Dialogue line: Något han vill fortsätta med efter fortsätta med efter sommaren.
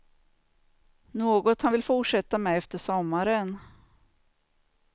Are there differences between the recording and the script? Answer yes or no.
yes